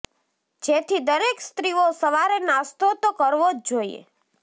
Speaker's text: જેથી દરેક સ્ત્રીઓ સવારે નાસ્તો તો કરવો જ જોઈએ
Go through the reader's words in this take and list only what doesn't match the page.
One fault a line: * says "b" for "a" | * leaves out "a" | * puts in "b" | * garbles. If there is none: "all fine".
all fine